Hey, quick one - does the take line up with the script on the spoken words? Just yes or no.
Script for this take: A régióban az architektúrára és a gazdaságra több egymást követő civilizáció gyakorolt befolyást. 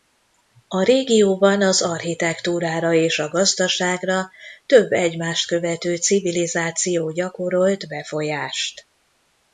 yes